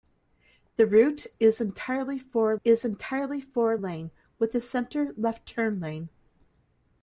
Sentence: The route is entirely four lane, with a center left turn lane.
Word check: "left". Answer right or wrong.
right